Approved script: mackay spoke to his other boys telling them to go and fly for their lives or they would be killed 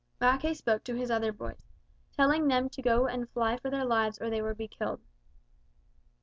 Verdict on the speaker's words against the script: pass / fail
pass